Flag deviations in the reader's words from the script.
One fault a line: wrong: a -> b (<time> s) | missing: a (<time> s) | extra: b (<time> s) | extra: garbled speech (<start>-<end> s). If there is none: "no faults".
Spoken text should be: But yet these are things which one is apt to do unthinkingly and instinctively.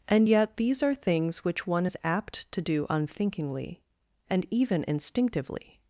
wrong: But -> And (0.1 s)
extra: even (4.5 s)